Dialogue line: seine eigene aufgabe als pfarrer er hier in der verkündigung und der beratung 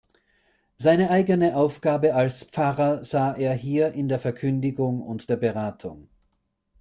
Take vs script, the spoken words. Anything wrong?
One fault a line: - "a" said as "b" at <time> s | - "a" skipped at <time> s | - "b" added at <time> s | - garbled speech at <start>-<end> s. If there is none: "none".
- "sah" added at 3.0 s